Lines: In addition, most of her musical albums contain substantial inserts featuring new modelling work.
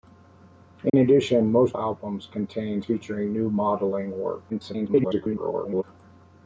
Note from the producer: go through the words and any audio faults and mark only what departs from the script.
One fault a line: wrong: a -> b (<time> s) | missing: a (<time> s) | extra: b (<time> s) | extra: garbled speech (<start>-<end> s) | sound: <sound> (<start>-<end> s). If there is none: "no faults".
sound: dropout (0.9-0.9 s)
missing: of her musical (1.8 s)
missing: substantial inserts (2.8 s)
extra: garbled speech (4.5-5.8 s)